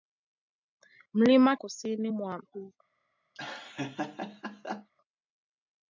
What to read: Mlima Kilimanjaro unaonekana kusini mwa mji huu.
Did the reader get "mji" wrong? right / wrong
wrong